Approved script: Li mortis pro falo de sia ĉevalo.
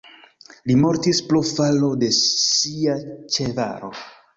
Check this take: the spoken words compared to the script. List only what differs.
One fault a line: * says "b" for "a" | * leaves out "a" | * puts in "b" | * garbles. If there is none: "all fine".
all fine